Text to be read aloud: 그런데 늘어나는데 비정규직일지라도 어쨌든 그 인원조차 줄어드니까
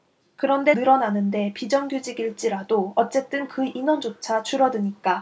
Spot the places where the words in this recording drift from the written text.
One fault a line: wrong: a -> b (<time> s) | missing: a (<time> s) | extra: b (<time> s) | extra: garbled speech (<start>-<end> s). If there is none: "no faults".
no faults